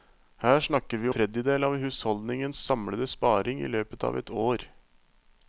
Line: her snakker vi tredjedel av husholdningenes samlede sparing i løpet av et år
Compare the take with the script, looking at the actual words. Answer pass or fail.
pass